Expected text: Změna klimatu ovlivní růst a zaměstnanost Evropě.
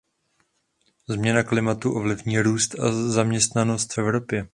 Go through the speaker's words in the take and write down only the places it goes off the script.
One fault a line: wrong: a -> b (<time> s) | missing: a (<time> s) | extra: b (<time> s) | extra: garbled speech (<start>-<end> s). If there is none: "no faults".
no faults